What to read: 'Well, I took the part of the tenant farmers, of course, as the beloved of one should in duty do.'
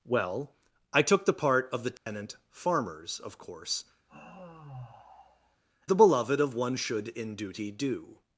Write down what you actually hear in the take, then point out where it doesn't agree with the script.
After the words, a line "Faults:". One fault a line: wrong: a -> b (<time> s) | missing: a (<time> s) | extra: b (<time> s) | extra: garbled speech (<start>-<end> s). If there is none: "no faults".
'Well, I took the part of the tenant farmers, of course, the beloved of one should in duty do.'
Faults:
missing: as (3.9 s)